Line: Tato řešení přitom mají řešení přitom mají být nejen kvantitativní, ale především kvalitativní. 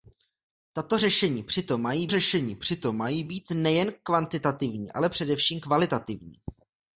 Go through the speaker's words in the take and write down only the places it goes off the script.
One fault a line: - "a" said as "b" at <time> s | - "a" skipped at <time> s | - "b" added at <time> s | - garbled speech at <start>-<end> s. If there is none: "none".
none